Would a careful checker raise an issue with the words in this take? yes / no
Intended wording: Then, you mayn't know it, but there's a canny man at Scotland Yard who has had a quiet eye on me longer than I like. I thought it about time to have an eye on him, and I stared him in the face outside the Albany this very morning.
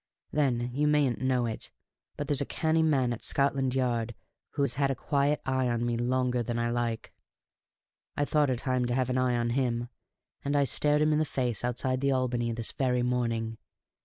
yes